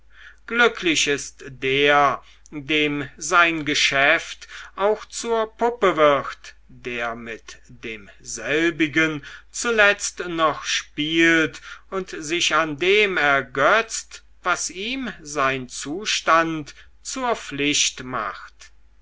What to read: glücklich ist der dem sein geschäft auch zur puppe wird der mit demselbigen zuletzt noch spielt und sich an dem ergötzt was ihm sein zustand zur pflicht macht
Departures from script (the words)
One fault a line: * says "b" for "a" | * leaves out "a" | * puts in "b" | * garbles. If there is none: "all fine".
all fine